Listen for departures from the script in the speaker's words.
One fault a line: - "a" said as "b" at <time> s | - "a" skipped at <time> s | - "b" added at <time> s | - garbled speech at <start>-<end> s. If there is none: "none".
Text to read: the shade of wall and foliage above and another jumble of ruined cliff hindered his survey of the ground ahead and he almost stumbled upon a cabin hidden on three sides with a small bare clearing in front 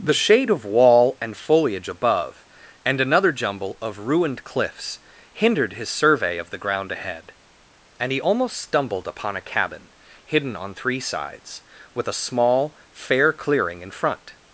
- "cliff" said as "cliffs" at 4.4 s
- "bare" said as "fair" at 12.9 s